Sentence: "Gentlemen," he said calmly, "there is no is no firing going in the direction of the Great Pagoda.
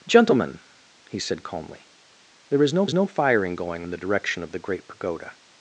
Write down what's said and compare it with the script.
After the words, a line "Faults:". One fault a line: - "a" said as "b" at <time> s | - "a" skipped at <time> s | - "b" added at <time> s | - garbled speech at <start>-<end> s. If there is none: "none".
"Gentlemen," he said calmly, "there is no is no firing going in the direction of the Great Pagoda.
Faults:
none